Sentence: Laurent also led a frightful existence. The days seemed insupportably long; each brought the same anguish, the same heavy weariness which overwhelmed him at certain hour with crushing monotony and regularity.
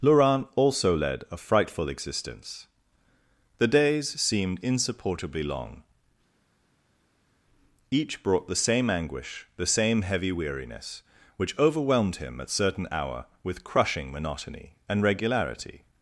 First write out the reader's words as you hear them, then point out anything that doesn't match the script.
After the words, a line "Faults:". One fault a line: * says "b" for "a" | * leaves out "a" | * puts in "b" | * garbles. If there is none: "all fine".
Laurent also led a frightful existence. The days seemed insupportably long; each brought the same anguish, the same heavy weariness which overwhelmed him at certain hour with crushing monotony and regularity.
Faults:
all fine